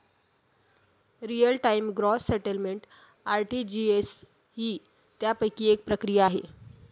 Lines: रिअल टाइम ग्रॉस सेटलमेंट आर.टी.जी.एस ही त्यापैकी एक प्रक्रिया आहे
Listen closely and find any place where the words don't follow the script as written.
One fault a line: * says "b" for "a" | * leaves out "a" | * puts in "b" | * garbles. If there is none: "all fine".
all fine